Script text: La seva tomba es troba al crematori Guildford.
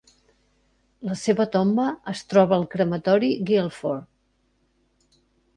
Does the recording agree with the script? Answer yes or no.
yes